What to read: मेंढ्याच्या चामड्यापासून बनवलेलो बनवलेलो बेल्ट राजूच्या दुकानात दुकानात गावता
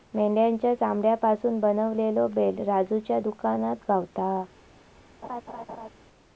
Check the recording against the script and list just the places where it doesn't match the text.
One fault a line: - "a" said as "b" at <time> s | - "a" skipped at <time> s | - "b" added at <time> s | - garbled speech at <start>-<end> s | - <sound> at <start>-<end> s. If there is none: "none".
- "बनवलेलो" skipped at 2.3 s
- "दुकानात" skipped at 3.8 s
- laugh at 5.2-5.9 s